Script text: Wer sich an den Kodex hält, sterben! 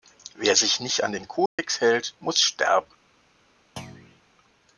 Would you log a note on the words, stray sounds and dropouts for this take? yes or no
yes